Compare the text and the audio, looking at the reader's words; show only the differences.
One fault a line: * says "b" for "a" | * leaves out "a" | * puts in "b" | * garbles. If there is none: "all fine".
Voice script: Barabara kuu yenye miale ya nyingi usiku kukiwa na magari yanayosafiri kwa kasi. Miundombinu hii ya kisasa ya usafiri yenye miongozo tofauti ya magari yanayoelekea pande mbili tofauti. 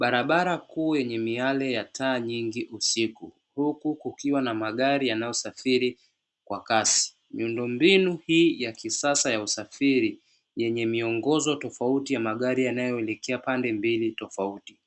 * puts in "taa"
* puts in "huku"